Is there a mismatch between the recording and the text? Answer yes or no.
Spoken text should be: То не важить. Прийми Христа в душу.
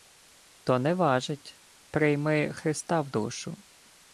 no